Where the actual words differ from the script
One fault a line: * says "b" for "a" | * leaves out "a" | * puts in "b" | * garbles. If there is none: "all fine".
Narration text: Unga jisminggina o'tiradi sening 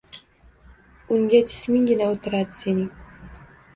all fine